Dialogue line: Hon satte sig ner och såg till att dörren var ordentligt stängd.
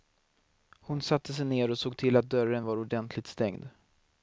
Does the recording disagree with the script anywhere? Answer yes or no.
no